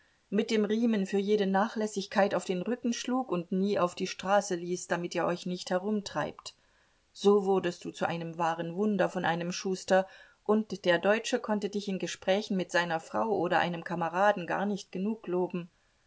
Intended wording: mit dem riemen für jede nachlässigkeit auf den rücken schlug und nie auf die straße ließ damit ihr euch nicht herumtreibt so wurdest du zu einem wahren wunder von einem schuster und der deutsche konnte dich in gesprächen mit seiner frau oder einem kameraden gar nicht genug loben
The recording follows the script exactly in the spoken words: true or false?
true